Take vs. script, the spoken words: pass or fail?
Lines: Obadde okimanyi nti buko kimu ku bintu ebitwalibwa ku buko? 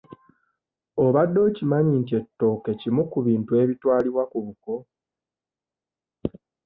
fail